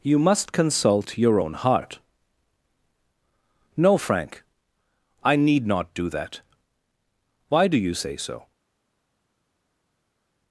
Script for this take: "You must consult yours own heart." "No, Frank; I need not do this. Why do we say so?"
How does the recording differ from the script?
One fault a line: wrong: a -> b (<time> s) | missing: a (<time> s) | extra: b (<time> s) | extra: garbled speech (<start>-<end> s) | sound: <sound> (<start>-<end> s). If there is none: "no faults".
wrong: yours -> your (1.1 s)
wrong: this -> that (6.1 s)
wrong: we -> you (7.8 s)